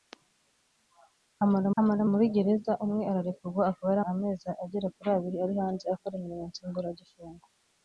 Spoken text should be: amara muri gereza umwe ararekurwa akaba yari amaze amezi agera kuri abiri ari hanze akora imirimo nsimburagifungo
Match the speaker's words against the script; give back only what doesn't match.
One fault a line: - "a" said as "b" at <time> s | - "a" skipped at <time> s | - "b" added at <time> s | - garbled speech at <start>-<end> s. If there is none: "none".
- "amara" added at 1.8 s
- "amaze" skipped at 4.0 s